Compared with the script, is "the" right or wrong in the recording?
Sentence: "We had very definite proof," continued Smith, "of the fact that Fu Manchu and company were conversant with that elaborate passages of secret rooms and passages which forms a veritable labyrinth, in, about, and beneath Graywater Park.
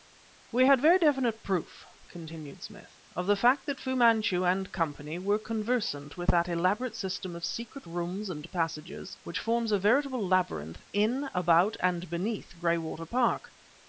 right